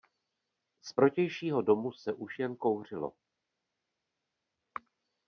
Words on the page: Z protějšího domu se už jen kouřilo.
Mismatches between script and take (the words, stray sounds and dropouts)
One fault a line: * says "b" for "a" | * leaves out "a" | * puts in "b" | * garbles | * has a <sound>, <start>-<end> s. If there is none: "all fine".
all fine